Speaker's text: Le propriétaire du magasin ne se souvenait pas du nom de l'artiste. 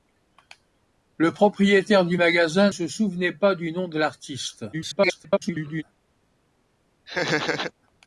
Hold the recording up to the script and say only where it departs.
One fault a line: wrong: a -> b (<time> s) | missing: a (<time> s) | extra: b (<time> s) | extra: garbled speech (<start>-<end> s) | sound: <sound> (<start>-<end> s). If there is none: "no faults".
missing: ne (2.7 s)
extra: garbled speech (4.7-5.8 s)
sound: laugh (7.1-7.7 s)